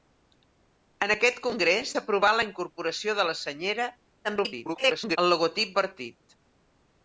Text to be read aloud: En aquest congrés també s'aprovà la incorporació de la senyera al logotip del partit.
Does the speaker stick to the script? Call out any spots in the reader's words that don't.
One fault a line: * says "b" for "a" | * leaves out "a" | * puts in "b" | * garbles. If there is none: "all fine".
* leaves out "també"
* garbles
* leaves out "del"